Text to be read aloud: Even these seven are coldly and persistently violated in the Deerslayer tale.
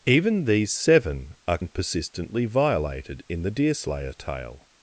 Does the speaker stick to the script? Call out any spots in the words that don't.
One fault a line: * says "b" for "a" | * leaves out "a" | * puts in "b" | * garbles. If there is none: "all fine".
* leaves out "coldly"